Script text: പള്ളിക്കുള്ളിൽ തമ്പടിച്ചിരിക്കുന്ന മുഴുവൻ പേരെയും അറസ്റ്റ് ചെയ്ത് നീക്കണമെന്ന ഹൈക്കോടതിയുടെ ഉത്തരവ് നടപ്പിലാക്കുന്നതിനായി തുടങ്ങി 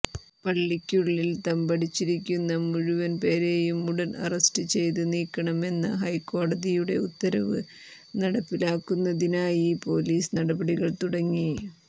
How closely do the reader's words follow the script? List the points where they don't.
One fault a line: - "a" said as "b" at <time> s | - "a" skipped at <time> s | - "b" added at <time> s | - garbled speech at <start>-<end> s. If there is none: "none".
- "ഉടൻ" added at 3.9 s
- "പൊലീസ് നടപടികൾ" added at 9.8 s